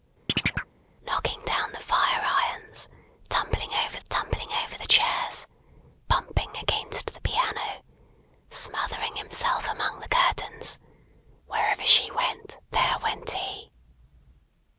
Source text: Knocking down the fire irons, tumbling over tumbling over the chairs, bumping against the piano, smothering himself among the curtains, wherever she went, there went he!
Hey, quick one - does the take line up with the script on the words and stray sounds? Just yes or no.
no